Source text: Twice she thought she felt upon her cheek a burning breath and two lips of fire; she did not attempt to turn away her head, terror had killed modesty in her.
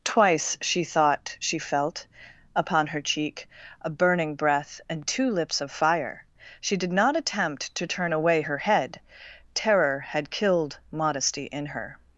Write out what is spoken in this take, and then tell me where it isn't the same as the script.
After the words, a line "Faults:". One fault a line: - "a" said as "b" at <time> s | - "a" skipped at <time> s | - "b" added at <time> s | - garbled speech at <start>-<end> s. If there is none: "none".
Twice she thought she felt upon her cheek a burning breath and two lips of fire; she did not attempt to turn away her head, terror had killed modesty in her.
Faults:
none